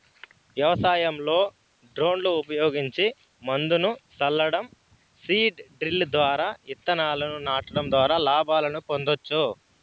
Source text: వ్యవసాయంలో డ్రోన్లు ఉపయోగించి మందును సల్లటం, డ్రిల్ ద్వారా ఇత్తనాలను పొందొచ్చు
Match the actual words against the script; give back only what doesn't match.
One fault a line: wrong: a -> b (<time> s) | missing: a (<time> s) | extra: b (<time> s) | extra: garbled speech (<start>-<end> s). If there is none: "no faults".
extra: సీడ్ (5.2 s)
extra: నాటడం ద్వారా లాభాలను (7.5 s)